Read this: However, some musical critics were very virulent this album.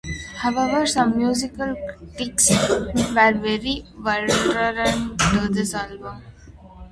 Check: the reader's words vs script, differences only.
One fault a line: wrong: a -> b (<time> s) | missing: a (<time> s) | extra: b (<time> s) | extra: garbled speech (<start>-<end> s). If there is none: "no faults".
extra: to (5.2 s)